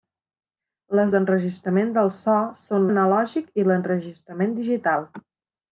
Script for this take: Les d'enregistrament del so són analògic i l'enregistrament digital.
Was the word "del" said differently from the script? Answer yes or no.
no